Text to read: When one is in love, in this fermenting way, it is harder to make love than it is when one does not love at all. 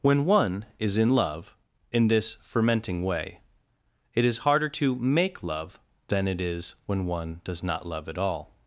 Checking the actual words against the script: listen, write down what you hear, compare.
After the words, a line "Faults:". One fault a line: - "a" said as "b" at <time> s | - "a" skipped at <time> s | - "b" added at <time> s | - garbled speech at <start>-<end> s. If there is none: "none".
When one is in love, in this fermenting way, it is harder to make love than it is when one does not love at all.
Faults:
none